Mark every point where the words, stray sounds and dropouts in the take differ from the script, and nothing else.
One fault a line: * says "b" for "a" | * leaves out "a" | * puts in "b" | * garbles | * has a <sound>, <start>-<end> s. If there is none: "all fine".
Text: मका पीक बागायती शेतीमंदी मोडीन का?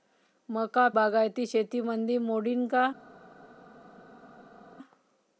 * leaves out "पीक"